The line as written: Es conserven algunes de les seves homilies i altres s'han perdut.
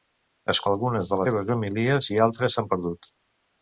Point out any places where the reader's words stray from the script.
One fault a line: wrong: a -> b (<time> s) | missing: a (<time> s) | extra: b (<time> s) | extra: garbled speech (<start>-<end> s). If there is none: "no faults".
missing: conserven (0.6 s)
missing: les (1.2 s)